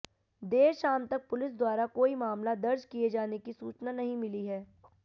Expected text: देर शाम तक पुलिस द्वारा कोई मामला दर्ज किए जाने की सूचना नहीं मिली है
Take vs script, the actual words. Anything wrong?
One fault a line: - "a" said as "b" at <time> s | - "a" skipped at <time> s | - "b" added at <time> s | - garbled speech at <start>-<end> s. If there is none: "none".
none